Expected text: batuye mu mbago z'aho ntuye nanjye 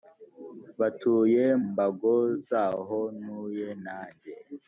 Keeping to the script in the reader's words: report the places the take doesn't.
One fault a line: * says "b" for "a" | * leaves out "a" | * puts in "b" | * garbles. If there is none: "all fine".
* leaves out "mu"